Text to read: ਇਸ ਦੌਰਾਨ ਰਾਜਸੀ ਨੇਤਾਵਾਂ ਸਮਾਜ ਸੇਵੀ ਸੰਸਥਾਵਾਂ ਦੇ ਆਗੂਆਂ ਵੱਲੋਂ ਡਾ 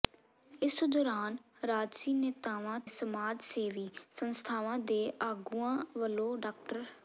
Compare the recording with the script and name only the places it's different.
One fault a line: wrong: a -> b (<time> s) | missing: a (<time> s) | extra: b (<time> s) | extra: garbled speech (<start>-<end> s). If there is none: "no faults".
no faults